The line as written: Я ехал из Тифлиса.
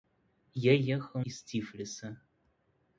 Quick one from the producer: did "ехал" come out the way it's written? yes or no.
yes